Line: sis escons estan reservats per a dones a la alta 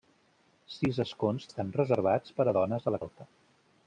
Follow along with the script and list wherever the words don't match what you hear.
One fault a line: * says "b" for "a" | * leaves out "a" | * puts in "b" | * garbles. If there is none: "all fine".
all fine